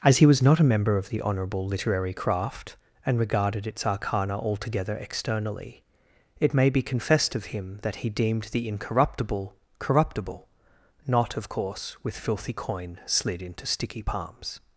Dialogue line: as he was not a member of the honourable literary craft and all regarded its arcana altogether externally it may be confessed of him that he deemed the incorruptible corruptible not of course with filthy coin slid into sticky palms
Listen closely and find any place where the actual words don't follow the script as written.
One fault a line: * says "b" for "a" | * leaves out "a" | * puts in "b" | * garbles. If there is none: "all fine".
* leaves out "all"